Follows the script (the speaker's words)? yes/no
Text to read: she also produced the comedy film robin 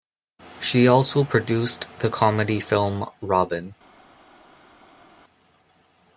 yes